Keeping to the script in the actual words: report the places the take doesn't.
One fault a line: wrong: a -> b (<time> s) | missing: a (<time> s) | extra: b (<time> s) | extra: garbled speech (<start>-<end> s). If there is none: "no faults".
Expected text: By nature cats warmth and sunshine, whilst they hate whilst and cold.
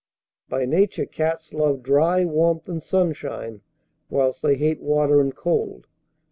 extra: love dry (1.5 s)
wrong: whilst -> water (4.8 s)